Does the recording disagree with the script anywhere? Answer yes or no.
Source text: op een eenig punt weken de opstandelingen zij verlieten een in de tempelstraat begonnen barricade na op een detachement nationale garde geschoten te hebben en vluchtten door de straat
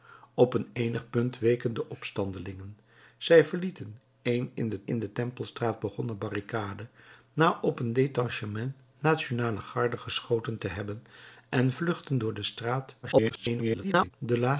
yes